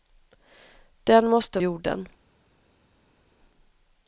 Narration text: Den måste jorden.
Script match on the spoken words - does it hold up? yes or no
yes